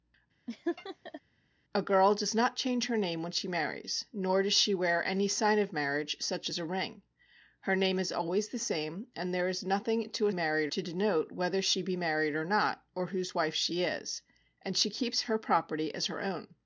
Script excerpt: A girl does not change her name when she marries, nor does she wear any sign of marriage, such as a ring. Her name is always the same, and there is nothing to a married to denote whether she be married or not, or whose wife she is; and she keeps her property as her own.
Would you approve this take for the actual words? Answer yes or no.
yes